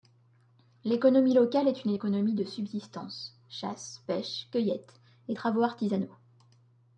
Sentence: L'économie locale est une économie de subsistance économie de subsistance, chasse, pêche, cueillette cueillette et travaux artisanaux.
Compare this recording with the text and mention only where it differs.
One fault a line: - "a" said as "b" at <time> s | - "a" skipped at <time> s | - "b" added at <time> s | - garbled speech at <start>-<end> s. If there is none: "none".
- "économie de subsistance" skipped at 3.4 s
- "cueillette" skipped at 5.0 s